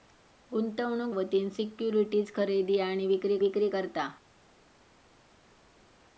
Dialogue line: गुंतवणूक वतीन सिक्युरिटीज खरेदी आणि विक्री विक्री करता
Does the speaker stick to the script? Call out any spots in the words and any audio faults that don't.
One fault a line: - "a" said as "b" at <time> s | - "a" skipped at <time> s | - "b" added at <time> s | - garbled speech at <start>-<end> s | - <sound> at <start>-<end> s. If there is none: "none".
none